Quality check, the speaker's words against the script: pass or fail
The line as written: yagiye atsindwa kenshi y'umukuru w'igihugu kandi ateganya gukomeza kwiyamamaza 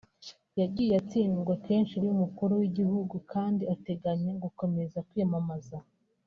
pass